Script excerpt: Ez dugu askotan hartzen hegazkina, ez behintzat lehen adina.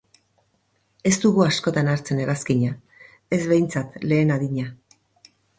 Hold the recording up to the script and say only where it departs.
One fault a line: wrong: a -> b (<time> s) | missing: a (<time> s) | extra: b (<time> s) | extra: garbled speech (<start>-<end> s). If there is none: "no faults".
no faults